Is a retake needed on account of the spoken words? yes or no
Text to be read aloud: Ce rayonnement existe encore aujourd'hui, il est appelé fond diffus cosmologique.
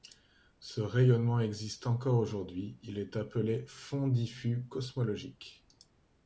no